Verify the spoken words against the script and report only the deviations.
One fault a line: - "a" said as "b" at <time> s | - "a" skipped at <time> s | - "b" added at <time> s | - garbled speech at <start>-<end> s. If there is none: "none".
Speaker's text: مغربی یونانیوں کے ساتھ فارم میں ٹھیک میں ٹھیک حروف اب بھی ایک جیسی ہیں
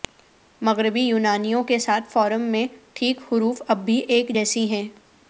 - "میں ٹھیک" skipped at 3.2 s